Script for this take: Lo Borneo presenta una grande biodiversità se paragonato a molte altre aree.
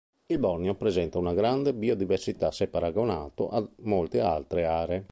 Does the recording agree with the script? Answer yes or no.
no